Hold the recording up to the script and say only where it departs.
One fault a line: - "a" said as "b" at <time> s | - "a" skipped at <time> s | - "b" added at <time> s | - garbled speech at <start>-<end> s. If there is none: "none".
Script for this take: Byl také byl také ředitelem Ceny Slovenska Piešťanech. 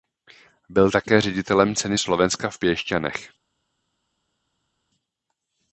- "byl také" skipped at 1.2 s
- "v" added at 2.5 s